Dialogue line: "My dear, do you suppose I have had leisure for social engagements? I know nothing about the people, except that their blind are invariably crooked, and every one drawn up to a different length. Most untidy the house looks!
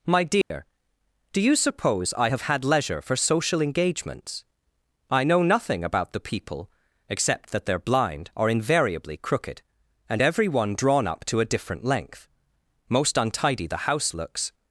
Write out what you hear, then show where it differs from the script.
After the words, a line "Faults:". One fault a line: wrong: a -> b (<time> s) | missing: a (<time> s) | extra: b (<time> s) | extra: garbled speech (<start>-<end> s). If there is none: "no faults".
"My dear, do you suppose I have had leisure for social engagements? I know nothing about the people, except that their blind are invariably crooked, and every one drawn up to a different length. Most untidy the house looks!
Faults:
no faults